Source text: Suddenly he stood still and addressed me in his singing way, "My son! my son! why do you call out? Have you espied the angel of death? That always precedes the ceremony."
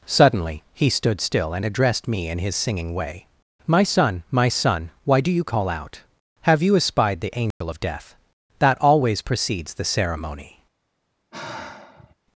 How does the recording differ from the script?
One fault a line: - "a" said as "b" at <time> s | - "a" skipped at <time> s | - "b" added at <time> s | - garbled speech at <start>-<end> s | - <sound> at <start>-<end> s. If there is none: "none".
- dropout at 7.5-7.6 s
- sigh at 11.3-12.1 s